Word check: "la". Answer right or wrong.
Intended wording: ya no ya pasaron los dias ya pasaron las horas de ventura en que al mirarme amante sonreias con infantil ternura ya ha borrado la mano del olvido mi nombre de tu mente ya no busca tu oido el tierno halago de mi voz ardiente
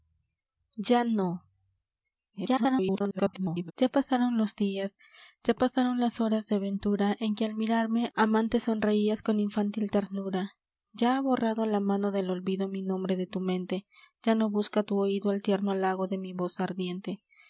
right